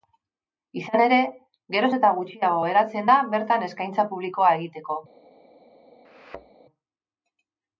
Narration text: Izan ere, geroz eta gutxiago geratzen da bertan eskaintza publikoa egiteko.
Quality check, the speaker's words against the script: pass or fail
pass